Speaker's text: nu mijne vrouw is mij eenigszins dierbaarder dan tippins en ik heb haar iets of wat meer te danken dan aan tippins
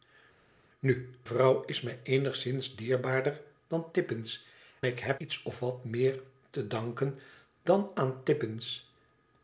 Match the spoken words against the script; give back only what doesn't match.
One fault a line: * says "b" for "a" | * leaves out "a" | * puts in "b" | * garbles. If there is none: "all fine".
* leaves out "mijne"
* leaves out "en"
* leaves out "haar"